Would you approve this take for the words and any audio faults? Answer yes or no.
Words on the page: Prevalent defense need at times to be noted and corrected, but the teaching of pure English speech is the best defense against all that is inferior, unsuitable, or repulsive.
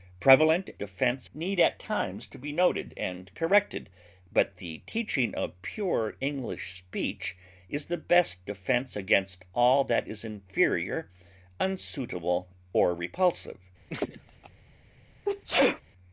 no